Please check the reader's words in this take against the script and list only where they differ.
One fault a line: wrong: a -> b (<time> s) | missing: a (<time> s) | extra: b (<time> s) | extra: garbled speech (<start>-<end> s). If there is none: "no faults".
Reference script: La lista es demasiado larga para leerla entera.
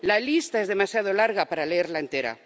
no faults